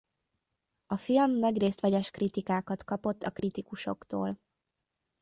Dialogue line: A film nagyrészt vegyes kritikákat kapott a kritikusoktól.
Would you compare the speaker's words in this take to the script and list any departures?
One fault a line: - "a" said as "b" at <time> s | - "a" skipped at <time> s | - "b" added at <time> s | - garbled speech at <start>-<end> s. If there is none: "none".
none